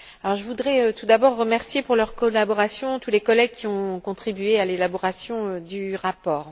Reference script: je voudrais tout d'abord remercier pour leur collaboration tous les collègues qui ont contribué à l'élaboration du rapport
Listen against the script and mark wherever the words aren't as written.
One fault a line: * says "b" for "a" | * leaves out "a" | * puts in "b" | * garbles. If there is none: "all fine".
all fine